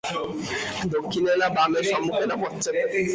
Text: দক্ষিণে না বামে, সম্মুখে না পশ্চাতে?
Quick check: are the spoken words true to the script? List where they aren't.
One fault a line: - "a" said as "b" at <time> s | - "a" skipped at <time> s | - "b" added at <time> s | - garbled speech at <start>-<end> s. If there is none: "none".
none